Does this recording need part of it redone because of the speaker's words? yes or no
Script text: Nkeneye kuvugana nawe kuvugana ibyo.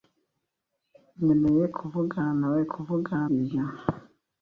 no